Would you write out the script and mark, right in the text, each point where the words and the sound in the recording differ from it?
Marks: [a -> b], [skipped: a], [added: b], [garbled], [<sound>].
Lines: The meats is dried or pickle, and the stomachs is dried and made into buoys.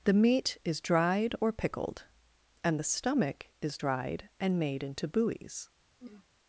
The [meats -> meat] is dried or [pickle, -> pickled] and the [stomachs -> stomach] is dried and made into buoys. [throat clearing]